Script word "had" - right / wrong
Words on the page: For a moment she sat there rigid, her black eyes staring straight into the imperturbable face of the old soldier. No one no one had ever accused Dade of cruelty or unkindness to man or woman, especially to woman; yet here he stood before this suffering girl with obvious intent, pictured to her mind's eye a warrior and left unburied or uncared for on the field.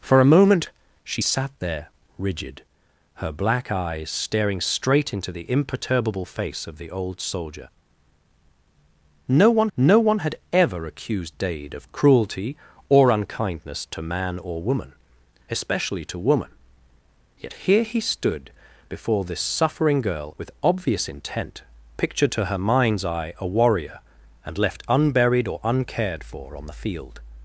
right